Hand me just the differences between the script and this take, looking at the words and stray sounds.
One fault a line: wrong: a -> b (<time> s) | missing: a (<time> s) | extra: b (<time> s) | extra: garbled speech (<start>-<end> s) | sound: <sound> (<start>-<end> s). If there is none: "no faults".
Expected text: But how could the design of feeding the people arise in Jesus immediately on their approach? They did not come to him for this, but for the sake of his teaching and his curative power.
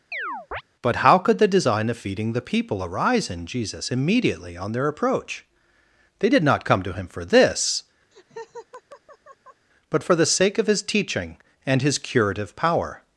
sound: chirp (0.1-0.6 s)
sound: laugh (8.1-9.7 s)